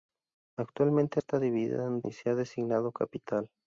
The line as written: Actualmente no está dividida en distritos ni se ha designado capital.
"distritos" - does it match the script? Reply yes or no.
no